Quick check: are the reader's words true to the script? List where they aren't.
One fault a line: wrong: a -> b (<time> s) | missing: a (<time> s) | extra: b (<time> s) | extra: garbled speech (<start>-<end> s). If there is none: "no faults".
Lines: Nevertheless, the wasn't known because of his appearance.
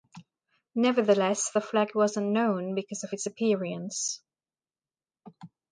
extra: flag (1.6 s)
wrong: his -> its (3.1 s)